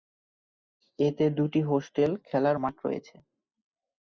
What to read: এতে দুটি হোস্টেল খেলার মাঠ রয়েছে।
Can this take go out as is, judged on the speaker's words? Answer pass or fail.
pass